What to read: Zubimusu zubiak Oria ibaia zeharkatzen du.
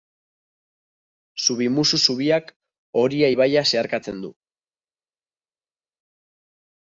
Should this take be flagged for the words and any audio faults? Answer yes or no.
no